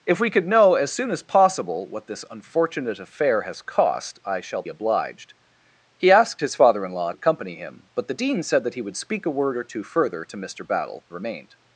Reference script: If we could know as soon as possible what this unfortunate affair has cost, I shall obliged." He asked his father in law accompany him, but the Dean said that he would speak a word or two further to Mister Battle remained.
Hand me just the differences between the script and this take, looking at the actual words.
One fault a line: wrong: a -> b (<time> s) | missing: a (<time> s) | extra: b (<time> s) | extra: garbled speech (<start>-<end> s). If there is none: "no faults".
no faults